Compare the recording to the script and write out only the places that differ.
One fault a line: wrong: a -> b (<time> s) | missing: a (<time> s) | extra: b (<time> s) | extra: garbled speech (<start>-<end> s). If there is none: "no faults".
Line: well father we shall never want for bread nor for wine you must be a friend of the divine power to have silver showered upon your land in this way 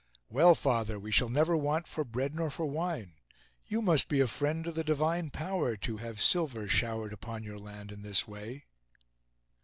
no faults